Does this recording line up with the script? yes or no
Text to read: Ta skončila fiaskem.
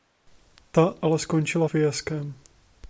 no